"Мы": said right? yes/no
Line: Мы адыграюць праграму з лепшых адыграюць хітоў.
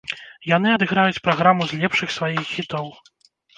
no